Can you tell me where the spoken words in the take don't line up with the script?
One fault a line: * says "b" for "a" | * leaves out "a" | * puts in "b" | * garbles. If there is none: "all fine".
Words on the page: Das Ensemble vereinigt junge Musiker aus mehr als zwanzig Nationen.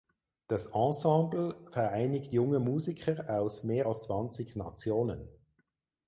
all fine